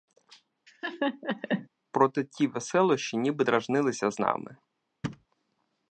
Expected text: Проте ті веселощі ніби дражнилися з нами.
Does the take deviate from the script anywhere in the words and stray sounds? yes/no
yes